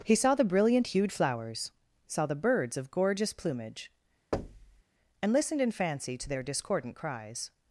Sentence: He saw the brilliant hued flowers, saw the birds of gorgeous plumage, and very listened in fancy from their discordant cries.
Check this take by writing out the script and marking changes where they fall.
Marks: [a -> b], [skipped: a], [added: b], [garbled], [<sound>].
He saw the brilliant hued flowers, saw the birds of gorgeous plumage, [thud] and [skipped: very] listened in fancy [from -> to] their discordant cries.